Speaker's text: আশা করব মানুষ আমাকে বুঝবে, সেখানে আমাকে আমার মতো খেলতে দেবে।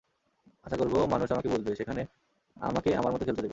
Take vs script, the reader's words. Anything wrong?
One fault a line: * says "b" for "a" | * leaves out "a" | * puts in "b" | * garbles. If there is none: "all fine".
all fine